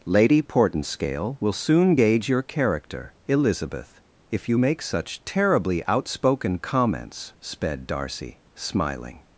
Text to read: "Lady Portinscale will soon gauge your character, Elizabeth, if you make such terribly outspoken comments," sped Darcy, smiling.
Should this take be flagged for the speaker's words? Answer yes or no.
no